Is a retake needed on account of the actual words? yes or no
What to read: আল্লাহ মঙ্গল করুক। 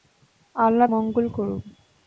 no